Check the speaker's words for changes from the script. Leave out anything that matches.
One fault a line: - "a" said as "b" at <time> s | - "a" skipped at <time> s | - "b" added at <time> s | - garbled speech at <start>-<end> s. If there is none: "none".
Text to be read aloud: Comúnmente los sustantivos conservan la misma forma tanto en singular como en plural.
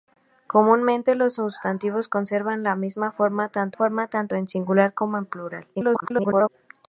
- "forma tanto" added at 3.7 s
- garbled speech at 5.7-6.5 s